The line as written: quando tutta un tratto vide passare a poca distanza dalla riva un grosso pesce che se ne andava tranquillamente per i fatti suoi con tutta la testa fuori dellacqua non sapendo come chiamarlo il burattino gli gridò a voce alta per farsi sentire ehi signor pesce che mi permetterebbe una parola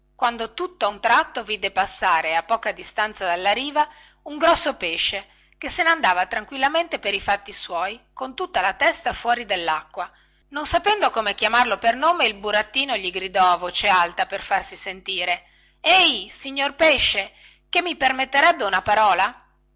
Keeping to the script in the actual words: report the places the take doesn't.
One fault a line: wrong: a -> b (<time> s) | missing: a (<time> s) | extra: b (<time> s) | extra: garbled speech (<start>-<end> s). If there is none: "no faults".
extra: per nome (11.8 s)